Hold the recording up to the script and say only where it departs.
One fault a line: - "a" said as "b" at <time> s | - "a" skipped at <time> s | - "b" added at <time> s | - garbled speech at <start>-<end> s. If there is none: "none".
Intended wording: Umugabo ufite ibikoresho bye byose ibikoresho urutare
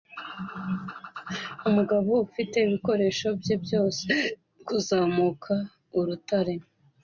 - "ibikoresho" said as "kuzamuka" at 4.7 s